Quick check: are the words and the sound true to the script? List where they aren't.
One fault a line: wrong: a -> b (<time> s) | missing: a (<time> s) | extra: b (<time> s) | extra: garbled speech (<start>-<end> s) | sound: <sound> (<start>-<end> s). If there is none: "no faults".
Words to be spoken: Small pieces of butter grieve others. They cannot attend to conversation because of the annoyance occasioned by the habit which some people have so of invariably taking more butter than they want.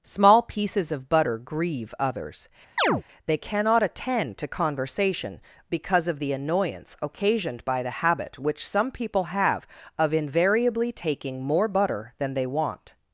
sound: chirp (2.8-3.0 s)
missing: so (9.7 s)